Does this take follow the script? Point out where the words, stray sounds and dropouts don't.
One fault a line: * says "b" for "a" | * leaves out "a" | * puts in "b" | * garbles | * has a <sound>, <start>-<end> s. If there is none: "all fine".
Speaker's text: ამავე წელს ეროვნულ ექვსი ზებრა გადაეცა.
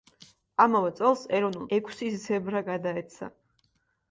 all fine